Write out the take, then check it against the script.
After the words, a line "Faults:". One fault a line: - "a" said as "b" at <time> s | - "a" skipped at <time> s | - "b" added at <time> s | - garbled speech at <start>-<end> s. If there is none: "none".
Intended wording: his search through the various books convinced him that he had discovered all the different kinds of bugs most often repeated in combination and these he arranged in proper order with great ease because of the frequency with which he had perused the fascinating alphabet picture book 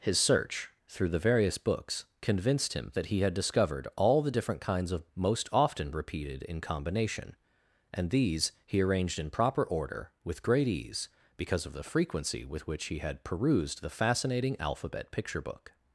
his search through the various books convinced him that he had discovered all the different kinds of most often repeated in combination and these he arranged in proper order with great ease because of the frequency with which he had perused the fascinating alphabet picture book
Faults:
- "bugs" skipped at 5.1 s